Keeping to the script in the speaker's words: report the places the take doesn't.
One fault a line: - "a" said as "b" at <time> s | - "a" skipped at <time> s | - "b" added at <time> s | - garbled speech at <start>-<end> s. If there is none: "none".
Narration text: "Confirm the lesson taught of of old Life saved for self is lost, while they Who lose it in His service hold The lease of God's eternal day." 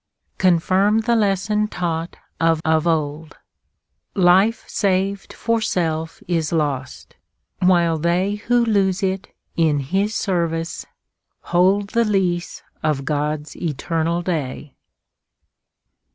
none